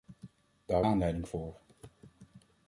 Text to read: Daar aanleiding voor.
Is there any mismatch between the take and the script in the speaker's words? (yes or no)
no